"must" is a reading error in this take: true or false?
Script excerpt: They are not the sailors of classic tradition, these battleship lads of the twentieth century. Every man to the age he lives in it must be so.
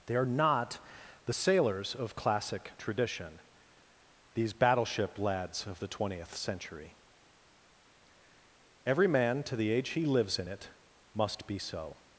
false